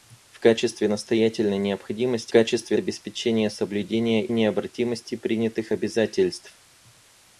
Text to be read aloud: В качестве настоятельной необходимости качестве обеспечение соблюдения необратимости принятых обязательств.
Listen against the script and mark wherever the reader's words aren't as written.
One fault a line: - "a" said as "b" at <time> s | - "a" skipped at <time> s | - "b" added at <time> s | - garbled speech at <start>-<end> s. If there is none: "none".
none